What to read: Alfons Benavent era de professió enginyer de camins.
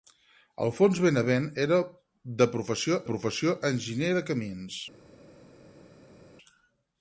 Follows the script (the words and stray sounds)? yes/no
no